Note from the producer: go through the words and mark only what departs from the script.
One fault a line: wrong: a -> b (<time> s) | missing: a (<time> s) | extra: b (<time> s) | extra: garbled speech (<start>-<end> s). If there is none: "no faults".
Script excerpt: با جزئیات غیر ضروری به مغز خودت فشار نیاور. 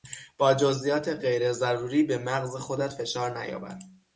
no faults